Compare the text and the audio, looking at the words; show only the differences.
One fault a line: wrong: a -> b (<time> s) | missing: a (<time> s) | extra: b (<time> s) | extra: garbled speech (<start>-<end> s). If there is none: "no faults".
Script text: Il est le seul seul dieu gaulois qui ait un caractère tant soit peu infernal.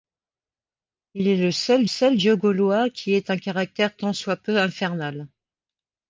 no faults